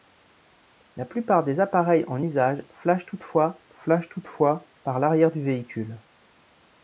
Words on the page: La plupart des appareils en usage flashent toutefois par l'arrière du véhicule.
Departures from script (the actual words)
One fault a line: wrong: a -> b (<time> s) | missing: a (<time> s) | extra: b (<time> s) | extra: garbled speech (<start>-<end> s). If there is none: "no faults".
extra: flashent toutefois (3.7 s)